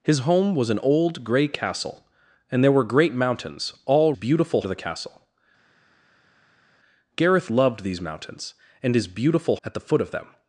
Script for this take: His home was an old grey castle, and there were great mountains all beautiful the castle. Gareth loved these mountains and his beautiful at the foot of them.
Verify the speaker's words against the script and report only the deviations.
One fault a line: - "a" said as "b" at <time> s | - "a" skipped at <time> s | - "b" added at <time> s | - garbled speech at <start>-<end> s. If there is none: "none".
none